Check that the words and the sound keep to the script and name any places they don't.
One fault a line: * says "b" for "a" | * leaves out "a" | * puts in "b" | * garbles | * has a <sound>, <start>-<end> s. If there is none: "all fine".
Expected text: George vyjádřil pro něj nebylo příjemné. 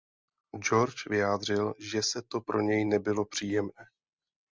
* puts in "že se to"